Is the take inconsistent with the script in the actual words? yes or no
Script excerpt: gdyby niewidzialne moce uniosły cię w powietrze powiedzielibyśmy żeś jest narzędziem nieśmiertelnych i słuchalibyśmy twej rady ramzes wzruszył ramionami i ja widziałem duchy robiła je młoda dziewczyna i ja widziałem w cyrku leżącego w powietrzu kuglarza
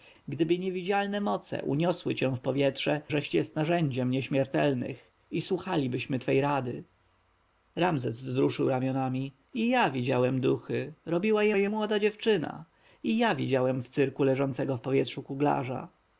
yes